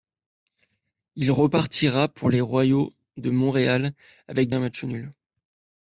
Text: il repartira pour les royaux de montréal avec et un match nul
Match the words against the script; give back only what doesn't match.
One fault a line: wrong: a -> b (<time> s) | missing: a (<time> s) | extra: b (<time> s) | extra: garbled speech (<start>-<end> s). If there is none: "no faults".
no faults